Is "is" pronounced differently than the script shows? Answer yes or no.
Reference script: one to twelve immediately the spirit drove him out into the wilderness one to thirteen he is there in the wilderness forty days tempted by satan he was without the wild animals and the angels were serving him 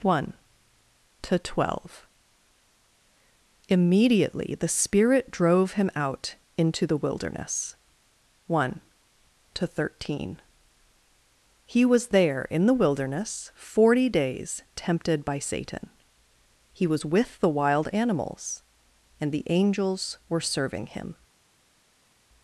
yes